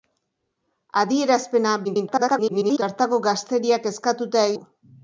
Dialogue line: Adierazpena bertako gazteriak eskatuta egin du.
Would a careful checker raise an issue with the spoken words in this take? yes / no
yes